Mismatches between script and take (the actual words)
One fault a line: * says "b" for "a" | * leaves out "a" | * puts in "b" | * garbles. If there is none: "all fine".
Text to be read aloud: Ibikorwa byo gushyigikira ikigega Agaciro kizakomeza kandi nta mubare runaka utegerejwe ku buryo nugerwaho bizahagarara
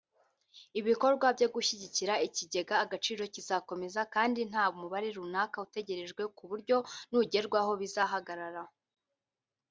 all fine